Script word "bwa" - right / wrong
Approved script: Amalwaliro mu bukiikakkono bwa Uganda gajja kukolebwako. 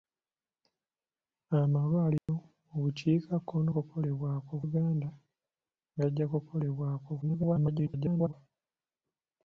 wrong